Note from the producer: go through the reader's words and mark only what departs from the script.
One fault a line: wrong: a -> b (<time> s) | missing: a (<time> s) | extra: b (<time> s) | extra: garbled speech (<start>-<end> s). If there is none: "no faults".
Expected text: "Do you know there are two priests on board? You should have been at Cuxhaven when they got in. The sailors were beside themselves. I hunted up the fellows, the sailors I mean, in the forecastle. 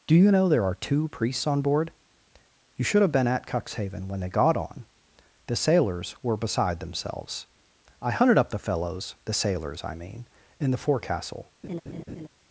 wrong: in -> on (4.6 s)